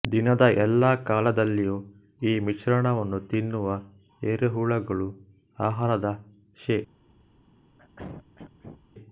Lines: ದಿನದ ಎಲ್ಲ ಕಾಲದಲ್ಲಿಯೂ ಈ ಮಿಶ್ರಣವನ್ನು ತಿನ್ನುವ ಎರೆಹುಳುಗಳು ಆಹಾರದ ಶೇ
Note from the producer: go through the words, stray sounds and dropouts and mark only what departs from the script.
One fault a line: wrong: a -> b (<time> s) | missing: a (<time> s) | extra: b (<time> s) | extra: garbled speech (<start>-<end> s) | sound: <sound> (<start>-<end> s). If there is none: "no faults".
sound: throat clearing (7.8-8.8 s)